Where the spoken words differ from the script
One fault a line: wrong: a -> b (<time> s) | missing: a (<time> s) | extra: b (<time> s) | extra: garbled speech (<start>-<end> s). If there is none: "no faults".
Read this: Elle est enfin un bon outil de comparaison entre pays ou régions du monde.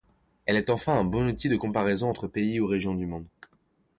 no faults